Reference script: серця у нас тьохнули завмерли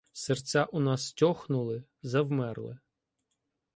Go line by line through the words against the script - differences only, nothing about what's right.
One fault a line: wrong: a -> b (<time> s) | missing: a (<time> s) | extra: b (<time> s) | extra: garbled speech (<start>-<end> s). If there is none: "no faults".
no faults